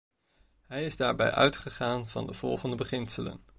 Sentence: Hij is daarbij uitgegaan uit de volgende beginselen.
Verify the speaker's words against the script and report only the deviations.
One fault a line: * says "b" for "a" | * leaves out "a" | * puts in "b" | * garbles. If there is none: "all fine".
* says "van" for "uit"